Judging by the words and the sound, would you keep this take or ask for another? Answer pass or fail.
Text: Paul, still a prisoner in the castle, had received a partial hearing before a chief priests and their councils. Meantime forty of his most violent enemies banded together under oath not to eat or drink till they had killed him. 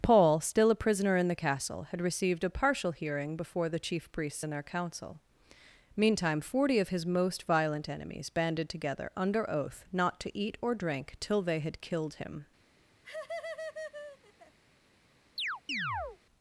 fail